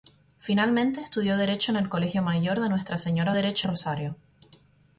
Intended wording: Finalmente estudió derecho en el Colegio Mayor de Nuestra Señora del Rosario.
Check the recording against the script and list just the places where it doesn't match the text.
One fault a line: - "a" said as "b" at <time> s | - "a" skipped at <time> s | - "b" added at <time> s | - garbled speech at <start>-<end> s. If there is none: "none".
- "del" said as "derecho" at 3.3 s